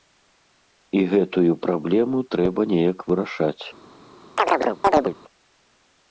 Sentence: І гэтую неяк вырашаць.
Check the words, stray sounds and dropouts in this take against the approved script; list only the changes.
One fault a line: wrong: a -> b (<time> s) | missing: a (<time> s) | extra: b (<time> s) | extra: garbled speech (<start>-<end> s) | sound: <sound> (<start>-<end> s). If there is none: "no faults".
extra: праблему трэба (1.6 s)
sound: chirp (4.4-5.1 s)